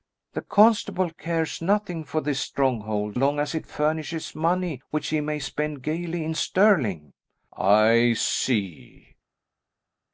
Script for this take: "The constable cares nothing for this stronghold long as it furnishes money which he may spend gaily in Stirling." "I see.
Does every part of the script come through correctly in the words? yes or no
yes